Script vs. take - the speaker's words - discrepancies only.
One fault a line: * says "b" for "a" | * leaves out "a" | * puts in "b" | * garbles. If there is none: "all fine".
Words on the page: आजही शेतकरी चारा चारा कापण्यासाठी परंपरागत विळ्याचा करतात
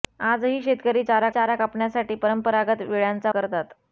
all fine